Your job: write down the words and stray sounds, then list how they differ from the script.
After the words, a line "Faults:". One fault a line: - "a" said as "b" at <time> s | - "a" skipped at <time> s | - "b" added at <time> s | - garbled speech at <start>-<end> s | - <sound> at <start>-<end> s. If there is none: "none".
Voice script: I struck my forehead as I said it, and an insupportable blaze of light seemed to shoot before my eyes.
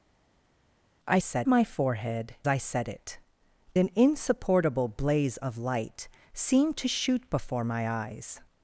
I said my forehead I said it, an insupportable blaze of light seemed to shoot before my eyes.
Faults:
- "struck" said as "said" at 1.2 s
- "as" skipped at 2.3 s
- "and" skipped at 3.2 s